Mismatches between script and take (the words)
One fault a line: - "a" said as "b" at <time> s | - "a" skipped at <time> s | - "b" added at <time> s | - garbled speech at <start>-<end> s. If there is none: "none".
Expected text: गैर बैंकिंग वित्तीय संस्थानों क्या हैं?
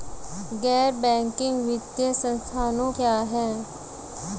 none